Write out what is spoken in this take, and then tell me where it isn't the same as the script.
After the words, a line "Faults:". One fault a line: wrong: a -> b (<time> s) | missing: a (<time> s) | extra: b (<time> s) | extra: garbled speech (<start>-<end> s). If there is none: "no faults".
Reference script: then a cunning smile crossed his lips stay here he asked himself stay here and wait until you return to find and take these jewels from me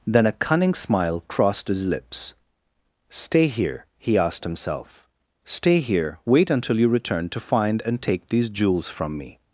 then a cunning smile crossed his lips stay here he asked himself stay here wait until you return to find and take these jewels from me
Faults:
missing: and (6.2 s)